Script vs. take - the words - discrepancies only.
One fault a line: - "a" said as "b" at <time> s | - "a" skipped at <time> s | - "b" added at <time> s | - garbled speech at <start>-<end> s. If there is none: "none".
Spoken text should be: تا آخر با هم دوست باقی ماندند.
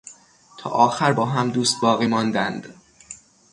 none